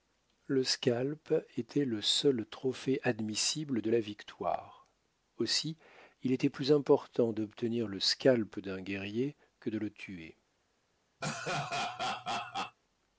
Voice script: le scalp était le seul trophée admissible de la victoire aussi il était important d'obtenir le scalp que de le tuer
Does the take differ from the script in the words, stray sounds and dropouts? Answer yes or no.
yes